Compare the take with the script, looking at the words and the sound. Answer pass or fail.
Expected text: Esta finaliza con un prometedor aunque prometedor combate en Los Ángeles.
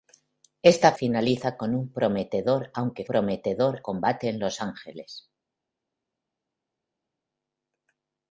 pass